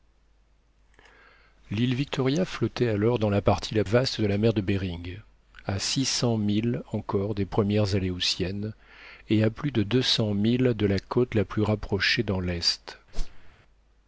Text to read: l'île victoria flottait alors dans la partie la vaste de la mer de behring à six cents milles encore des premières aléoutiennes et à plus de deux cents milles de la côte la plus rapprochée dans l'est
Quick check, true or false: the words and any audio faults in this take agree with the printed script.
false